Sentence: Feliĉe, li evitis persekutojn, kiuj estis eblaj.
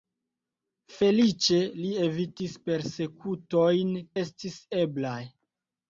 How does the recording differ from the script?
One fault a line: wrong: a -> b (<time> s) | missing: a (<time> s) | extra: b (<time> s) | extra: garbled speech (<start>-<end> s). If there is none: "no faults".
missing: kiuj (3.9 s)